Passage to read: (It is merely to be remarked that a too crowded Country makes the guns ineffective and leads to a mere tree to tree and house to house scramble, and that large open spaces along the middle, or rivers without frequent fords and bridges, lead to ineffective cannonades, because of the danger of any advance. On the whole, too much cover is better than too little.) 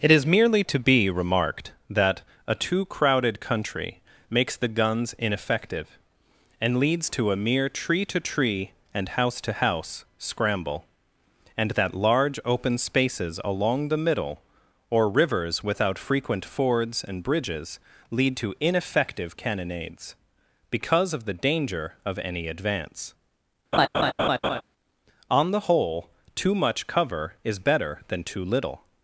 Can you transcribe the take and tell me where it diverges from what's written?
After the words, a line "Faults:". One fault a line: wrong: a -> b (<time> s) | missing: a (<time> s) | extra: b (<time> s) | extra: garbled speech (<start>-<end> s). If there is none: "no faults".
(It is merely to be remarked that a too crowded Country makes the guns ineffective and leads to a mere tree to tree and house to house scramble, and that large open spaces along the middle, or rivers without frequent fords and bridges, lead to ineffective cannonades, because of the danger of any advance. On the whole, too much cover is better than too little.)
Faults:
no faults